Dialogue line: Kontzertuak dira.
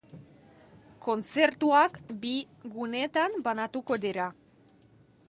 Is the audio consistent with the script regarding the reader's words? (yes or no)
no